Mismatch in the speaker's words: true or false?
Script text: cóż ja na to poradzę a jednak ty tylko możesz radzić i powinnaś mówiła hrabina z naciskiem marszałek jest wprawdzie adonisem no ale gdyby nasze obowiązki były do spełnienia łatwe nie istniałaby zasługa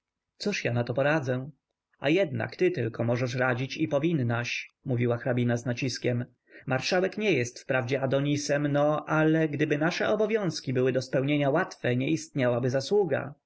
true